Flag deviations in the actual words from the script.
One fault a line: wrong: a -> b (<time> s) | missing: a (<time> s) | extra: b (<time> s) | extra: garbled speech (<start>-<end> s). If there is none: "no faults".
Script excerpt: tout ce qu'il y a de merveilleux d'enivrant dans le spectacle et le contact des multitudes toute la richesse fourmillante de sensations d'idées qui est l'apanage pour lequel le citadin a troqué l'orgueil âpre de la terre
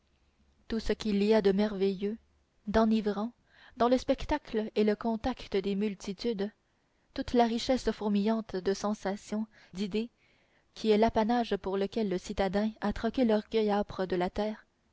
no faults